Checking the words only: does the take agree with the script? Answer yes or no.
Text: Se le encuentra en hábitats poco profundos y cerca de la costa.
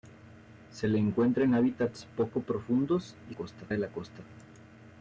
no